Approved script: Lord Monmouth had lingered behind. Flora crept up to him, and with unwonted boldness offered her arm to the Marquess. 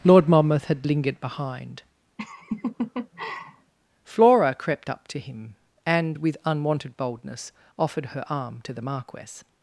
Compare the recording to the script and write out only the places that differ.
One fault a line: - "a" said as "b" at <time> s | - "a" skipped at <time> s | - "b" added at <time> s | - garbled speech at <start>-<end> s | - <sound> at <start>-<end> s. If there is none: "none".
- laugh at 2.2-3.7 s